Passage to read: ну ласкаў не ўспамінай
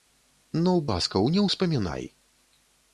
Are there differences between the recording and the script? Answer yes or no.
no